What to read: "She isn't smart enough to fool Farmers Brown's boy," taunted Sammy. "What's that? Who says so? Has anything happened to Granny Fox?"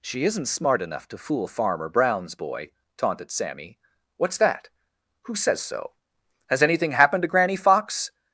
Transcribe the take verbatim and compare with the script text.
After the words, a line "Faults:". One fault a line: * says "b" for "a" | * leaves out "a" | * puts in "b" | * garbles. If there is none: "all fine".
"She isn't smart enough to fool Farmer Brown's boy," taunted Sammy. "What's that? Who says so? Has anything happened to Granny Fox?"
Faults:
* says "Farmer" for "Farmers"